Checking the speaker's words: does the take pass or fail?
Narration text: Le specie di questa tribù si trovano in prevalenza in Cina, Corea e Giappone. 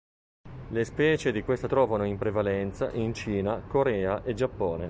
fail